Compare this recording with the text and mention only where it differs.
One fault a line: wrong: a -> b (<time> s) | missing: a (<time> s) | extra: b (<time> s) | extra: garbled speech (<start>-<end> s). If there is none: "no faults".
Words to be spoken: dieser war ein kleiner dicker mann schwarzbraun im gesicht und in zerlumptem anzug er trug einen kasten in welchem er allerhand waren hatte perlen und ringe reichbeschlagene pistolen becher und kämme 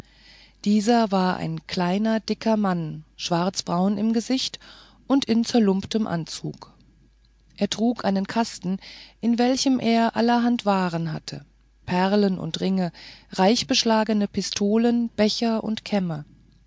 no faults